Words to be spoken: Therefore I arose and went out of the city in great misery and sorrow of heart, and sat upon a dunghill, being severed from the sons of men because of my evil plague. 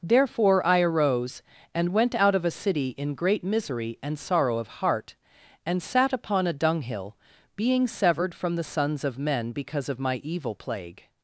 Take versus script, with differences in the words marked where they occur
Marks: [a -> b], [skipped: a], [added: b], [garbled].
Therefore I arose and went out of [the -> a] city in great misery and sorrow of heart, and sat upon a dunghill, being severed from the sons of men because of my evil plague.